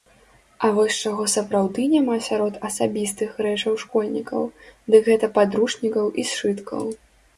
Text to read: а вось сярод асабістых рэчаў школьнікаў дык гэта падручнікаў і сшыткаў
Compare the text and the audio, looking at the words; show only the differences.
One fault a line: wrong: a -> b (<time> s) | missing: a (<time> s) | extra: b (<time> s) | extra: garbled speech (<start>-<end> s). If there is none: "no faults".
extra: чаго сапраўды няма (1.1 s)